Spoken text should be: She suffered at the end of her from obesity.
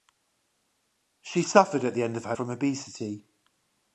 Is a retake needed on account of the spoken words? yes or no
no